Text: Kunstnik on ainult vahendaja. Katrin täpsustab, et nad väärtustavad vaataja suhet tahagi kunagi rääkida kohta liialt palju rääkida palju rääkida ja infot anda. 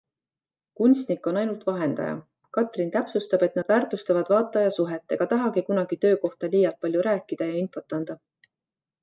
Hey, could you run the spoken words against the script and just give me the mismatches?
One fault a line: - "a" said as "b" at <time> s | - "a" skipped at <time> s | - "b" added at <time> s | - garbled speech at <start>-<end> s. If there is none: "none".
- "ega" added at 5.2 s
- "rääkida" said as "töö" at 6.0 s
- "palju rääkida" skipped at 7.5 s